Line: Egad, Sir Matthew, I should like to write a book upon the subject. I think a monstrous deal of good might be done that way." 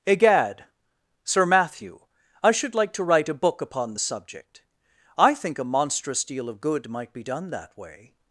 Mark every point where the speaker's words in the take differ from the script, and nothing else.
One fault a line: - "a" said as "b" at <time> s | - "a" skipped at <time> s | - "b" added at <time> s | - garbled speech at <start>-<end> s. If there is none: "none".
none